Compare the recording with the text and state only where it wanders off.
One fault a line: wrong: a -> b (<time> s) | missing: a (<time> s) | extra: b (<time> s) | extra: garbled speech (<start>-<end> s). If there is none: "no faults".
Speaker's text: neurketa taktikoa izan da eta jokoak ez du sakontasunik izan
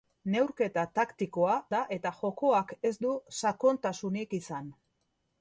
missing: izan (1.6 s)